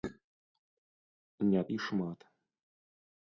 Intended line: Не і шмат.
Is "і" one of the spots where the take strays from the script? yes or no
no